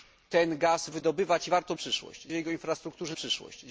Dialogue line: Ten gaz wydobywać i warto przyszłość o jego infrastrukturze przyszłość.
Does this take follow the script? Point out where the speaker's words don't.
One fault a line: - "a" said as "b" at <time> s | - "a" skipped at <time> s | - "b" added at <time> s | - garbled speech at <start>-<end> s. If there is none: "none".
none